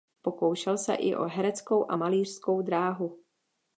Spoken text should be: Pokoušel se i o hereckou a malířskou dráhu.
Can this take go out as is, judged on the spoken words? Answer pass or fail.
pass